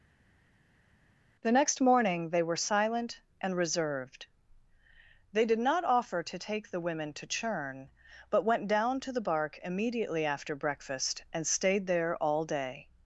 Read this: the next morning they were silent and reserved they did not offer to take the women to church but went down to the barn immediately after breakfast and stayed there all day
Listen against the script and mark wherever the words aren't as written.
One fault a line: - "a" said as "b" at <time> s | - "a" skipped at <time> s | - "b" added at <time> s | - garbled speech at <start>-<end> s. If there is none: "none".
- "church" said as "churn" at 7.3 s
- "barn" said as "bark" at 9.2 s